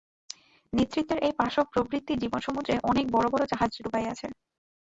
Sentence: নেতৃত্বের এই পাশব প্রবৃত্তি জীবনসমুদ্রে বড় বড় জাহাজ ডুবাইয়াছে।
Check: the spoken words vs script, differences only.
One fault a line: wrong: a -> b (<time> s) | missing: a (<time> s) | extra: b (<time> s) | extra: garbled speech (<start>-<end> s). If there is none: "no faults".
extra: অনেক (2.9 s)